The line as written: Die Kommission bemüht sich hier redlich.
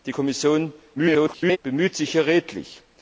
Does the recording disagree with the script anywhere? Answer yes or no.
yes